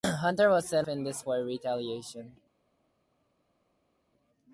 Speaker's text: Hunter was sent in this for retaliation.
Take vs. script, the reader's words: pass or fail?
pass